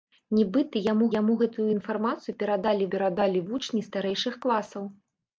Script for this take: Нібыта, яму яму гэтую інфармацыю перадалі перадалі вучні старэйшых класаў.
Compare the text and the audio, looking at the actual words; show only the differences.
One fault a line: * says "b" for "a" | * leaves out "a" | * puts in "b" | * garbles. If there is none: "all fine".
all fine